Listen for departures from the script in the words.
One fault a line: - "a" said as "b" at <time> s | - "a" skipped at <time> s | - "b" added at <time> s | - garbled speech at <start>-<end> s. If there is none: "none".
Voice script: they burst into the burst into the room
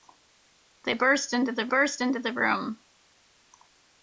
none